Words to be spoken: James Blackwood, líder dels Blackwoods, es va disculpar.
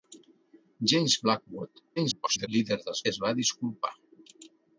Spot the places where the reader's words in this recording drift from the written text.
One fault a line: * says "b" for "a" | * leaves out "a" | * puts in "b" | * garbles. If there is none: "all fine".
* garbles
* leaves out "Blackwoods"